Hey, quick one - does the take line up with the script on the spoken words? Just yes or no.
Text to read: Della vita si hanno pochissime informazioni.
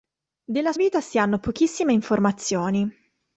yes